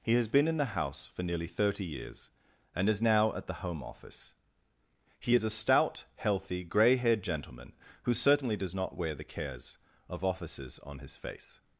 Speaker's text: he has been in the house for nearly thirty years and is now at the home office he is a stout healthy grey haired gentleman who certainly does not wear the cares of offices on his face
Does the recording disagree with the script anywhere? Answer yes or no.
no